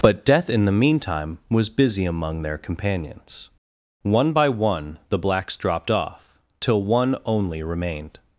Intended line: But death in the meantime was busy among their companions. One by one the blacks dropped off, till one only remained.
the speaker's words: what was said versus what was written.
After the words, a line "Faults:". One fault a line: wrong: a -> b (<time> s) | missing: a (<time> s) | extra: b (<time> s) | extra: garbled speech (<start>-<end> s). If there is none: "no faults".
But death in the meantime was busy among their companions. One by one the blacks dropped off, till one only remained.
Faults:
no faults